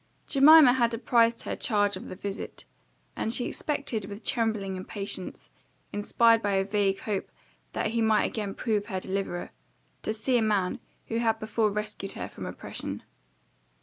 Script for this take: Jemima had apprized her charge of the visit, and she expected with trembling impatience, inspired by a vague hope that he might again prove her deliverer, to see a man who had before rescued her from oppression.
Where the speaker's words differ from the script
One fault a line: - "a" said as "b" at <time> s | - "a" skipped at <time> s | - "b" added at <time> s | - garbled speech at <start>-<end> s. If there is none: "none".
none